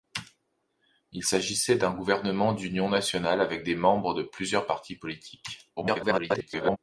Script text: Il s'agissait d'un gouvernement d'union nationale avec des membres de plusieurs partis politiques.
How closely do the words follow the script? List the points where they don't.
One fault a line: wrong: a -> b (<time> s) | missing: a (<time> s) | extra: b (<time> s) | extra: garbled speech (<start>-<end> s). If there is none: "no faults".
extra: garbled speech (5.8-6.8 s)